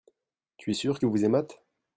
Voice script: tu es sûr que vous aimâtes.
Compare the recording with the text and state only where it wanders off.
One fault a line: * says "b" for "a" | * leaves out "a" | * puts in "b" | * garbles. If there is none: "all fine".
all fine